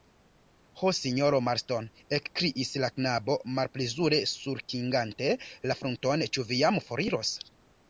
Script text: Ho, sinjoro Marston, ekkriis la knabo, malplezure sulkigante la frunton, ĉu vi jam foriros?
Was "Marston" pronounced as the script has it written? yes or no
yes